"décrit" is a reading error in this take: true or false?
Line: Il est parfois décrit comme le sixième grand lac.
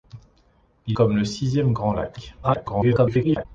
true